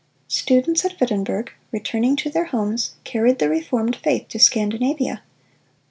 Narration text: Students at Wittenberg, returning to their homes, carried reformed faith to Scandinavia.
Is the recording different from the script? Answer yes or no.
yes